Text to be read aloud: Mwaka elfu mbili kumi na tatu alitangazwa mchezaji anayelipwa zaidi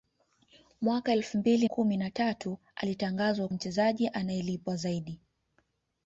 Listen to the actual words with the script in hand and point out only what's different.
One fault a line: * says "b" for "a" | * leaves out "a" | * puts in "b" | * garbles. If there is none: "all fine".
all fine